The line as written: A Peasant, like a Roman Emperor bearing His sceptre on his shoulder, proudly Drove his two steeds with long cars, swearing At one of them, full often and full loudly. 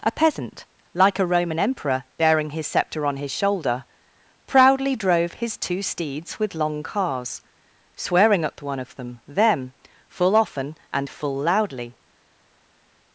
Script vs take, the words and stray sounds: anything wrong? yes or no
yes